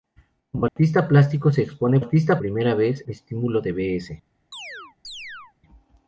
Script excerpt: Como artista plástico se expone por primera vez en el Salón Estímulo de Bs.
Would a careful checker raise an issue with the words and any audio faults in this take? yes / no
yes